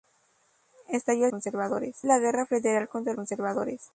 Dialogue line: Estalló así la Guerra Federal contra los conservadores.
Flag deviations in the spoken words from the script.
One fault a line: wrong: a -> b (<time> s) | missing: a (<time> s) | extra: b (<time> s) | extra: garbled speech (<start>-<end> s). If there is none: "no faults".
wrong: así -> conservadores (1.3 s)
missing: los (3.1 s)